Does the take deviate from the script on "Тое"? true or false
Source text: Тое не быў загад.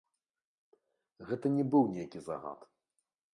true